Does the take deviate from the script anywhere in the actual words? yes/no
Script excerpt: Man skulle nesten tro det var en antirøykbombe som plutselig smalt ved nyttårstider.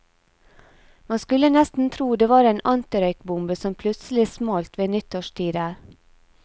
no